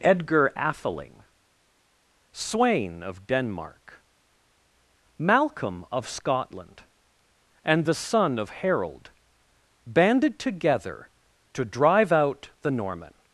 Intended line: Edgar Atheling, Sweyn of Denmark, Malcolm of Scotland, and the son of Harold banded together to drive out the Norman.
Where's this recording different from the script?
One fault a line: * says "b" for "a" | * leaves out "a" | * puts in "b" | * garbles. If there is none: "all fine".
all fine